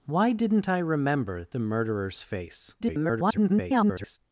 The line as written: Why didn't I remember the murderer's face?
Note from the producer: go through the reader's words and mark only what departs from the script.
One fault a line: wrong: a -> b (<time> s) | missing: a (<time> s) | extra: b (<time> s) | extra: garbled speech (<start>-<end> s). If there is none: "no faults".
extra: garbled speech (2.8-4.2 s)